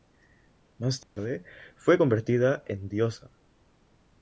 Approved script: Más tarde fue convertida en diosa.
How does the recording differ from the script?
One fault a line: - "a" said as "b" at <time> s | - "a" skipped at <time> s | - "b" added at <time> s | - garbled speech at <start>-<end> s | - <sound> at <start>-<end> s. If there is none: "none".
- dropout at 1.0-1.2 s